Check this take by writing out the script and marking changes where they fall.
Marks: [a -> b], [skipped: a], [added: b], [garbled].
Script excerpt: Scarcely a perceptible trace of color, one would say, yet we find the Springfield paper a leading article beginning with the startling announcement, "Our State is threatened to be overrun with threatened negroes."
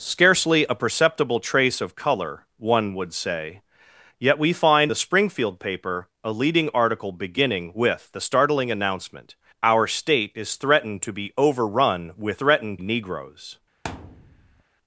Scarcely a perceptible trace of color, one would say, yet we find the Springfield paper a leading article beginning with the startling announcement, "Our State is threatened to be overrun with threatened negroes."